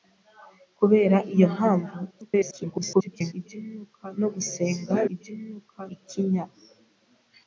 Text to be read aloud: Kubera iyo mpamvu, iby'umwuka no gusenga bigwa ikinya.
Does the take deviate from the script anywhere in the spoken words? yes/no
yes